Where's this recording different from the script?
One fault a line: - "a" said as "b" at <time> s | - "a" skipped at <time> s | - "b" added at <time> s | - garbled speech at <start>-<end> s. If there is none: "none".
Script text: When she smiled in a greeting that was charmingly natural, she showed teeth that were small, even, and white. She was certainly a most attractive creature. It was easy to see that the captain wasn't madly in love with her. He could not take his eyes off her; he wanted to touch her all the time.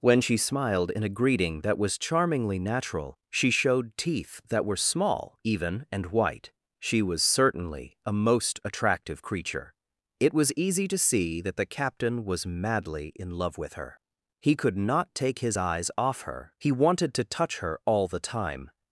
- "wasn't" said as "was" at 12.2 s